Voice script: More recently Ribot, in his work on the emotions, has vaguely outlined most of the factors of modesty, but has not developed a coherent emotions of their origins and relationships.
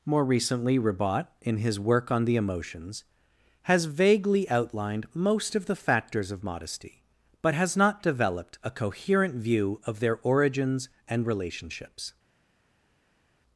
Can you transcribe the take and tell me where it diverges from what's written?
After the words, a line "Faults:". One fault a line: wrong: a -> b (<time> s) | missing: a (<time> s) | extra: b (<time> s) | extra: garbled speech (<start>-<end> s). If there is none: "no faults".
More recently Ribot, in his work on the emotions, has vaguely outlined most of the factors of modesty, but has not developed a coherent view of their origins and relationships.
Faults:
wrong: emotions -> view (9.3 s)